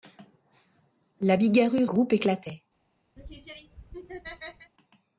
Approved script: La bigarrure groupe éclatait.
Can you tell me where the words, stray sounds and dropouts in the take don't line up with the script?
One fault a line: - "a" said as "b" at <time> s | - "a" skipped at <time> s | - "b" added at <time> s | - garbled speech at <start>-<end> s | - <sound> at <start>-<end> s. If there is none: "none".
- laugh at 3.2-4.7 s